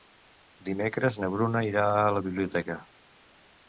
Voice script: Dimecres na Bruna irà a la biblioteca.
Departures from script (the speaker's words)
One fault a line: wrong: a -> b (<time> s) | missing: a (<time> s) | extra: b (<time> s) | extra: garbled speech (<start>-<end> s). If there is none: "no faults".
no faults